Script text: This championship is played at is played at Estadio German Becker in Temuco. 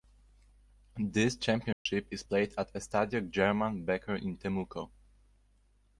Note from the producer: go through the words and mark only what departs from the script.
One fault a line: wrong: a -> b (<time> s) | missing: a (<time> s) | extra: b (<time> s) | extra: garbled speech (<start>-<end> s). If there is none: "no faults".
missing: is played at (2.7 s)